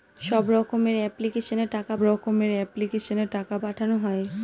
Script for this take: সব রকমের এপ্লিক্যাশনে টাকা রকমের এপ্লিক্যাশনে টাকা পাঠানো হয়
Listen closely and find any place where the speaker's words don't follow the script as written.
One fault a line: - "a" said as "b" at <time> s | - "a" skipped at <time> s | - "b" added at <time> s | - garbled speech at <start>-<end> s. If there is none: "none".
none